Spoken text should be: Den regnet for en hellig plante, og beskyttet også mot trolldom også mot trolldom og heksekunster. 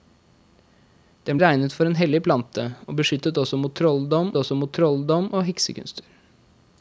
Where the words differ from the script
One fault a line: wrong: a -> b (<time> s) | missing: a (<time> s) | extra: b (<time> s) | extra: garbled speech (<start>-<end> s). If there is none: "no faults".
no faults